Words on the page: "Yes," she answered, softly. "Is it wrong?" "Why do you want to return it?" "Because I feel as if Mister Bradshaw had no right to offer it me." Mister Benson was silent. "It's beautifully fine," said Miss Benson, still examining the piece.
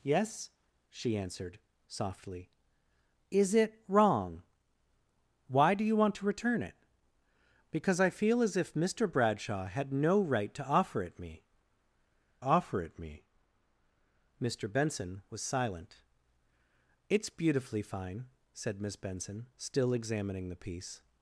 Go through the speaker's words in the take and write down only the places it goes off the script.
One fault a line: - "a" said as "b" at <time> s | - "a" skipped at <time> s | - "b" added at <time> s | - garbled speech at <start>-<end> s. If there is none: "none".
- "offer it me" added at 12.4 s